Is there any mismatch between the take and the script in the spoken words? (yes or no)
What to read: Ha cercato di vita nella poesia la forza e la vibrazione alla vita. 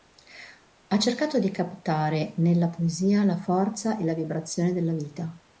yes